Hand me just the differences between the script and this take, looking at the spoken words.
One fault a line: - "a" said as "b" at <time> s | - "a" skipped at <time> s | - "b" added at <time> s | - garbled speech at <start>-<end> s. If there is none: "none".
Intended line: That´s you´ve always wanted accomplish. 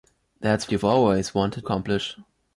none